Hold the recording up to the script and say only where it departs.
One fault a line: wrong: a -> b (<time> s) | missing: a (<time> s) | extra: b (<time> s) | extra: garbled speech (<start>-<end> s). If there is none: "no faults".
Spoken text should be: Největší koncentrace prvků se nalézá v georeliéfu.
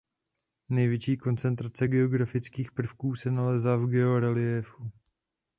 extra: geografických (1.9 s)